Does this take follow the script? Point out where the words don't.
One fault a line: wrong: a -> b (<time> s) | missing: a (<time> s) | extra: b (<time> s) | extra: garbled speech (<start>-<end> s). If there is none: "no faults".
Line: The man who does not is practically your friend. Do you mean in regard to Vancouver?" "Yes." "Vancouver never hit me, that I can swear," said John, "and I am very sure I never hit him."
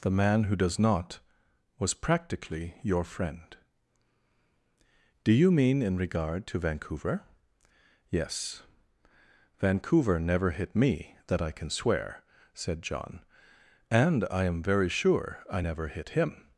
wrong: is -> was (1.8 s)